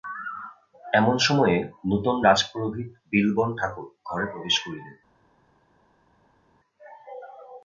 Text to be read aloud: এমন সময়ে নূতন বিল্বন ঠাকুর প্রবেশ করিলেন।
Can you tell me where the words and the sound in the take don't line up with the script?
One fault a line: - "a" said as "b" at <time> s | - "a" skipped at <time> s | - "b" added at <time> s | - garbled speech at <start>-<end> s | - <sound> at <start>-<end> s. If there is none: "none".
- "রাজপুরোহিত" added at 2.2 s
- "ঘরে" added at 4.1 s